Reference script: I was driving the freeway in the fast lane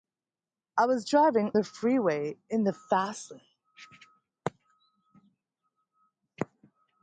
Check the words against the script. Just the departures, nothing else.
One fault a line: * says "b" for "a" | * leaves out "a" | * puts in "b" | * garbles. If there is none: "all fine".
all fine